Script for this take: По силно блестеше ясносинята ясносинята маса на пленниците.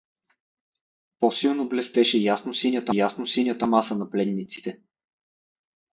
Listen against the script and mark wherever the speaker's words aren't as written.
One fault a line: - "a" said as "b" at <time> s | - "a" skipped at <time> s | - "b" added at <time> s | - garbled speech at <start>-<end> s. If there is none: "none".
none